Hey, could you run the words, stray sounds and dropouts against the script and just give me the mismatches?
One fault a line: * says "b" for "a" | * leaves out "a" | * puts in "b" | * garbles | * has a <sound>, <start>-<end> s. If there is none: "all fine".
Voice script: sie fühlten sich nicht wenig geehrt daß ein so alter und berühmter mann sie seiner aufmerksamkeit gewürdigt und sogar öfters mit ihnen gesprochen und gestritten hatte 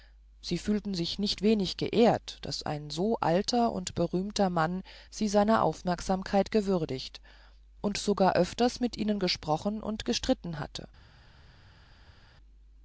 all fine